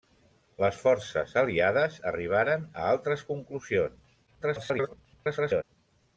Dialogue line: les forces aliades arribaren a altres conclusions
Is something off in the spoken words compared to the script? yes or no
yes